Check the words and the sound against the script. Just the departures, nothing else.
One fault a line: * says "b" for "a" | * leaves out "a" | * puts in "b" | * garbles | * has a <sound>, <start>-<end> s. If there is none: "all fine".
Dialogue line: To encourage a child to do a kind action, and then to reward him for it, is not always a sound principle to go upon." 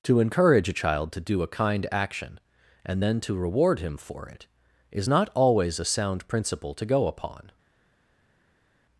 all fine